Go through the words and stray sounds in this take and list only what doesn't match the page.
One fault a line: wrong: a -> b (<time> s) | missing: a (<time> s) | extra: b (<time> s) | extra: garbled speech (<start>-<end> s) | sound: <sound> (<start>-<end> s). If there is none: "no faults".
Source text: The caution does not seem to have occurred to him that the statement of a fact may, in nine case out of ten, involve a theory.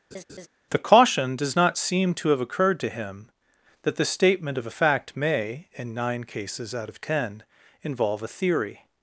sound: laugh (0.1-0.5 s)
wrong: case -> cases (6.2 s)